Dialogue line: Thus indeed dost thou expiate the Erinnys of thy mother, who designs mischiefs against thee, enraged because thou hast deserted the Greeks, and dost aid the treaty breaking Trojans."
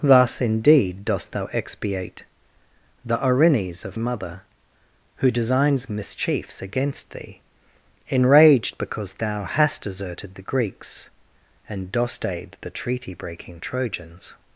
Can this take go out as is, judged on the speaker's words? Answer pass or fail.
fail